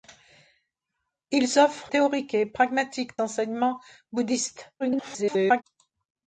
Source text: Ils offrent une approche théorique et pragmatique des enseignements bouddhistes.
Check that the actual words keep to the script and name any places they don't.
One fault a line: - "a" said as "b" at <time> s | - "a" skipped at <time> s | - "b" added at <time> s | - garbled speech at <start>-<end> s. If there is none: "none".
- "une approche" skipped at 1.9 s
- "des" skipped at 3.1 s
- garbled speech at 4.8-5.6 s